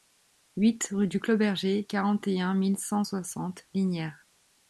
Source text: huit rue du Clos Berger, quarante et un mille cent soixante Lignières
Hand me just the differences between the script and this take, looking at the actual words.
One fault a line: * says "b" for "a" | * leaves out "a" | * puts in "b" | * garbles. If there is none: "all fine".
all fine